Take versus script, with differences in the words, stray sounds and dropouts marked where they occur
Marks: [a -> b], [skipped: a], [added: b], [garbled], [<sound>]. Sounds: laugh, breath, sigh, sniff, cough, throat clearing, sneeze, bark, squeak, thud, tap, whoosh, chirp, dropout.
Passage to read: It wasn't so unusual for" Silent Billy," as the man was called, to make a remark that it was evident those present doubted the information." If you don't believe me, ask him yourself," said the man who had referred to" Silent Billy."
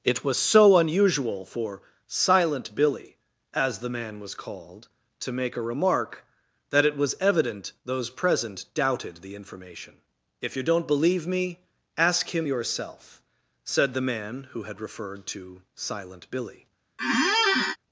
It [wasn't -> was] so unusual for" Silent Billy," as the man was called, to make a remark that it was evident those present doubted the information." If you don't believe me, ask him yourself," said the man who had referred to" Silent Billy." [squeak]